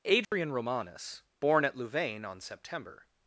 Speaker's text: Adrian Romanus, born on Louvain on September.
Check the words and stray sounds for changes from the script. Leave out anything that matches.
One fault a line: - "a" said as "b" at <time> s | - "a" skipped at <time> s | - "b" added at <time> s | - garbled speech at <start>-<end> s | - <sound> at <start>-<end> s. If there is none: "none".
- dropout at 0.2-0.3 s
- "on" said as "at" at 1.6 s